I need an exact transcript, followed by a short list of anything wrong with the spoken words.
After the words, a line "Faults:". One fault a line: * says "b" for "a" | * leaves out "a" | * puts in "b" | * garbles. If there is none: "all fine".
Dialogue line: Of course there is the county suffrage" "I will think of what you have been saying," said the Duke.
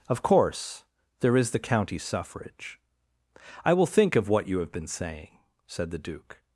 Of course there is the county suffrage" "I will think of what you have been saying," said the Duke.
Faults:
all fine